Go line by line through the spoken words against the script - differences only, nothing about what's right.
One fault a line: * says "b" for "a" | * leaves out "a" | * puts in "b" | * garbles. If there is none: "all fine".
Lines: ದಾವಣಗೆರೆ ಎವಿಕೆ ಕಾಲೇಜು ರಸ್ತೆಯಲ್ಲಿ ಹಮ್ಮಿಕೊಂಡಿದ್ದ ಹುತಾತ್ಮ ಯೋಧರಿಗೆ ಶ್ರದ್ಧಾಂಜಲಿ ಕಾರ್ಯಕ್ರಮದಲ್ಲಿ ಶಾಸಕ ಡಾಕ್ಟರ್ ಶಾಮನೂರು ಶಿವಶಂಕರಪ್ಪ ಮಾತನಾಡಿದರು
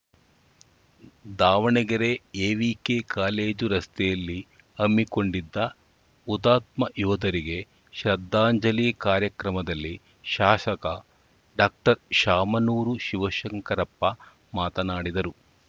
all fine